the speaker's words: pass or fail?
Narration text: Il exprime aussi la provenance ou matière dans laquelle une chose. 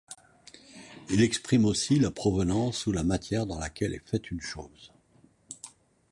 fail